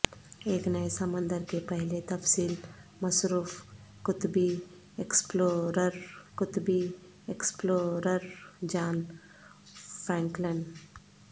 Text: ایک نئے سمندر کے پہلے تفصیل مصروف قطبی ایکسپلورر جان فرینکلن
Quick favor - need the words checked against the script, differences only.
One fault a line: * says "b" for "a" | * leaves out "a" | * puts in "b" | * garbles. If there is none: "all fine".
* puts in "قطبی ایکسپلورر"